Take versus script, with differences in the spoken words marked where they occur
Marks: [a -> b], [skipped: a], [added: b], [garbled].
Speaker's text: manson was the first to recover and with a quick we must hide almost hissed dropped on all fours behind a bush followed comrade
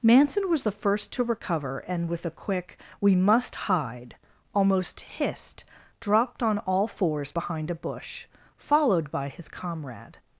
manson was the first to recover and with a quick we must hide almost hissed dropped on all fours behind a bush followed [added: by his] comrade